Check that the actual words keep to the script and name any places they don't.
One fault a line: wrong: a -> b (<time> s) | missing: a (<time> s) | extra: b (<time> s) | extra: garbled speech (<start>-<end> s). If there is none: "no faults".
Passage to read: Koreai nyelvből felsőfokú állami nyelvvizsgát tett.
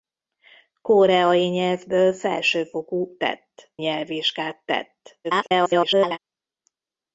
wrong: állami -> tett (3.2 s)
extra: garbled speech (5.2-6.2 s)